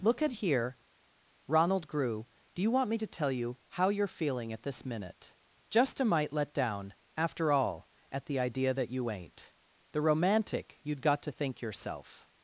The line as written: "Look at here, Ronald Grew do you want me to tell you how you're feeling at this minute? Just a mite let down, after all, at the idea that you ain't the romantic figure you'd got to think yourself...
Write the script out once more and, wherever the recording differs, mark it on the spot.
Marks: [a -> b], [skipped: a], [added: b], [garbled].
"Look at here, Ronald Grew do you want me to tell you how you're feeling at this minute? Just a mite let down, after all, at the idea that you ain't the romantic [skipped: figure] you'd got to think yourself...